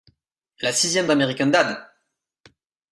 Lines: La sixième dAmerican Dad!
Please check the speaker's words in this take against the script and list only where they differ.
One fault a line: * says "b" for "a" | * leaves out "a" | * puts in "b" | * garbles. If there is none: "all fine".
all fine